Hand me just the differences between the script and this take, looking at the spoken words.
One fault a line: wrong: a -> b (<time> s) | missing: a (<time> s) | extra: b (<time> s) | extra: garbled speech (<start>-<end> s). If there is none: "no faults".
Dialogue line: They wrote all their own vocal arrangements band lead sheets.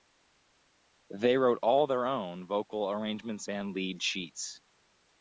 no faults